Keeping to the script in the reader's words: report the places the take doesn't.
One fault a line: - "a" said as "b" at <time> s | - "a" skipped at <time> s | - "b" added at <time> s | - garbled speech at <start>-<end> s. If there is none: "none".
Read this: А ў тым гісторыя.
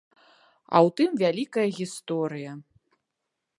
- "вялікая" added at 1.2 s